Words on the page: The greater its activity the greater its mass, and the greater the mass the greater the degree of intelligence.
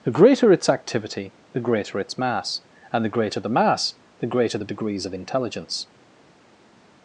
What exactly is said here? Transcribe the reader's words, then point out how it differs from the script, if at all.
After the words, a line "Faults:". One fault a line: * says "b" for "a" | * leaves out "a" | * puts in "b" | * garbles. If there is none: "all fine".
The greater its activity the greater its mass, and the greater the mass the greater the degrees of intelligence.
Faults:
* says "degrees" for "degree"